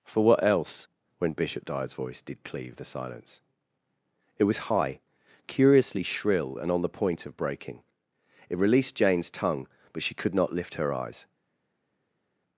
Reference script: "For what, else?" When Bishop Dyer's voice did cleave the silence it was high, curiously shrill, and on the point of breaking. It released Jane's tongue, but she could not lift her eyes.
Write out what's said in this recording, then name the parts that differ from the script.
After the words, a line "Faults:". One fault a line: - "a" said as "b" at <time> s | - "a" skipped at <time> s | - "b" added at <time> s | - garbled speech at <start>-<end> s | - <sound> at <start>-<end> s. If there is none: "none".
"For what, else?" When Bishop Dyer's voice did cleave the silence it was high, curiously shrill, and on the point of breaking. It released Jane's tongue, but she could not lift her eyes.
Faults:
none